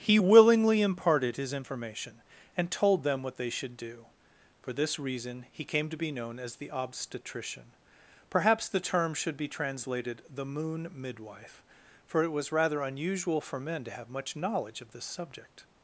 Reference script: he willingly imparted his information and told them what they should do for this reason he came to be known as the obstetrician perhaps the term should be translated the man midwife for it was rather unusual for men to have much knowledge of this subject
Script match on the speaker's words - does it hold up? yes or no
no